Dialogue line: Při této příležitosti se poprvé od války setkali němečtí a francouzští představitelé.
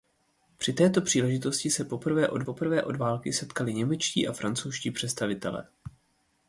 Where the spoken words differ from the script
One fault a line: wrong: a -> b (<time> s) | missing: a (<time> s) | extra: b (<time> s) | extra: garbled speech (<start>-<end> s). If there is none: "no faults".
extra: poprvé od (2.4 s)